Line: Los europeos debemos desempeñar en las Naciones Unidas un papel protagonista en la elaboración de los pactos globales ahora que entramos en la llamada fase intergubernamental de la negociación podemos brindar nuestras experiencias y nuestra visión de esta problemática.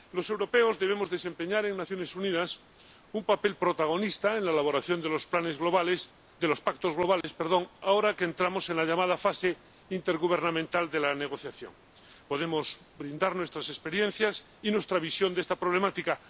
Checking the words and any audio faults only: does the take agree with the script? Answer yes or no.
no